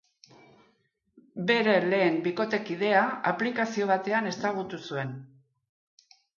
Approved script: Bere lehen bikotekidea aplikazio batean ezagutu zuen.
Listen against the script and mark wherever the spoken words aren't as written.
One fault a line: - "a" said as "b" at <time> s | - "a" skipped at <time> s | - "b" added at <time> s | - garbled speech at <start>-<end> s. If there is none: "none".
none